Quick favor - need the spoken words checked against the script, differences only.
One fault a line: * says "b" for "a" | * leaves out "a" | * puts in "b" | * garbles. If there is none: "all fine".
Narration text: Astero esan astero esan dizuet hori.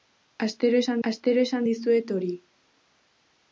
all fine